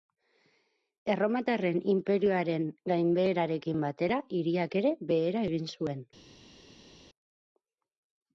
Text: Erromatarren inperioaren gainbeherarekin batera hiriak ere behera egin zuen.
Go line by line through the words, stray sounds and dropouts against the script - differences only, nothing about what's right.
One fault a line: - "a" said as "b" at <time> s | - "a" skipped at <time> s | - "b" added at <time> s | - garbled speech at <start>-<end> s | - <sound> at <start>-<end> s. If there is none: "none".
none